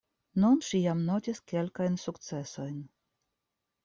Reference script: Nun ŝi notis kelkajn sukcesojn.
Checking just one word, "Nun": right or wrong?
right